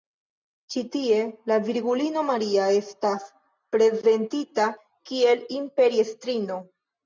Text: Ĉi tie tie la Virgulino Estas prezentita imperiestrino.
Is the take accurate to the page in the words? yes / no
no